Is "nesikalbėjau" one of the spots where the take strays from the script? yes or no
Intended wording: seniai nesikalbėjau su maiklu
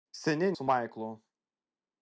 yes